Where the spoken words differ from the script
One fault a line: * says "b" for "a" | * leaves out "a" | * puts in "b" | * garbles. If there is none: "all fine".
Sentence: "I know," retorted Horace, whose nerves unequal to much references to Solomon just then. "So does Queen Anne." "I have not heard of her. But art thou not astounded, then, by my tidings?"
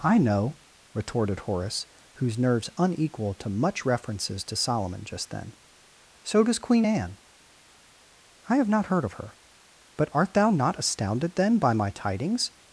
all fine